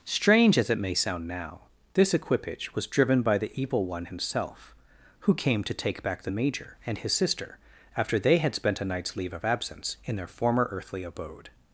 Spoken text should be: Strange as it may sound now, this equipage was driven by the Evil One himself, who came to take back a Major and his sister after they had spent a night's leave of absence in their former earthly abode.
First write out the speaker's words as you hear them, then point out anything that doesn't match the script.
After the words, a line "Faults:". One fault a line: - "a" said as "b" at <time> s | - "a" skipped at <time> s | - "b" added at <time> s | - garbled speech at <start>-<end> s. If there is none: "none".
Strange as it may sound now, this equipage was driven by the Evil One himself, who came to take back the Major and his sister after they had spent a night's leave of absence in their former earthly abode.
Faults:
- "a" said as "the" at 6.2 s